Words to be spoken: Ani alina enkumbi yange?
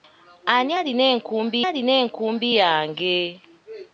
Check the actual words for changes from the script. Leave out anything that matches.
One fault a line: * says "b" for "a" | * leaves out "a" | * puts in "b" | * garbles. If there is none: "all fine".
* puts in "alina enkumbi"